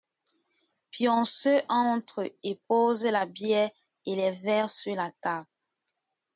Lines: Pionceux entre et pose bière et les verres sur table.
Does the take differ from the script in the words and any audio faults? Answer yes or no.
yes